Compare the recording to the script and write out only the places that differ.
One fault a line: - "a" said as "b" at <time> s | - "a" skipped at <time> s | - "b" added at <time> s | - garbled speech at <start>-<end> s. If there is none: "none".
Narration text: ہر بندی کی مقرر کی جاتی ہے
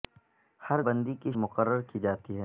none